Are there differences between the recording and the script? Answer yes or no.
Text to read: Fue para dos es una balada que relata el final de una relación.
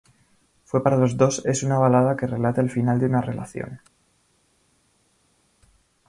yes